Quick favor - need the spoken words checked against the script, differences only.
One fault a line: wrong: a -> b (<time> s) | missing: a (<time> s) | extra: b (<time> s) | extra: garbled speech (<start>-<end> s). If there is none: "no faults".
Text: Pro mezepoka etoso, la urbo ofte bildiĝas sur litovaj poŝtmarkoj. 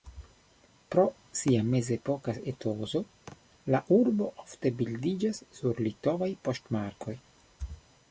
extra: sia (1.4 s)